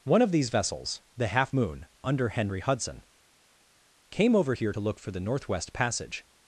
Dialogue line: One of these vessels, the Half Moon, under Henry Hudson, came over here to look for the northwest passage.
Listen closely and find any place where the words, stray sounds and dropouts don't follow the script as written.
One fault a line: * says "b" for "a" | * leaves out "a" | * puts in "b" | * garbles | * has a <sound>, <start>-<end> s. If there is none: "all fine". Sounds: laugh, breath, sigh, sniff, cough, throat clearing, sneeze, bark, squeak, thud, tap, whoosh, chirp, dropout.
all fine